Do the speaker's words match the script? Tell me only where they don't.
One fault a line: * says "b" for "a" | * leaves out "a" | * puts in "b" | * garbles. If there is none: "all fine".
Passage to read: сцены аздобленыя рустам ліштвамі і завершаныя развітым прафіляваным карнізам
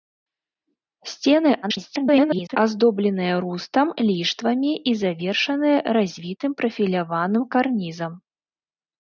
* garbles